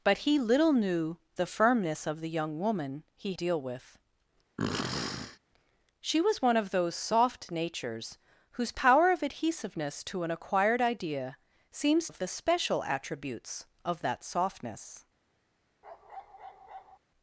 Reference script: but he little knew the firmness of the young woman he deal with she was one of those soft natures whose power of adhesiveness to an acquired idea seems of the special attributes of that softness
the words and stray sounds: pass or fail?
fail